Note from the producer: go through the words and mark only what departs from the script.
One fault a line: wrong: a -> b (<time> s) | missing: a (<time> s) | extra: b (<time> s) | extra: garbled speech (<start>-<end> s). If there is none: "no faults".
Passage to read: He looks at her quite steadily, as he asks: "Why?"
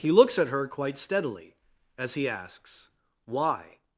no faults